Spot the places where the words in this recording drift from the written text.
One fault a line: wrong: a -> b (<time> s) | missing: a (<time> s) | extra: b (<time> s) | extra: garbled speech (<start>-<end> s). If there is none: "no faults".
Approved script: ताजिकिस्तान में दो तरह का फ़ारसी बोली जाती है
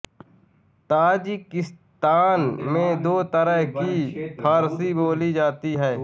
wrong: का -> की (3.7 s)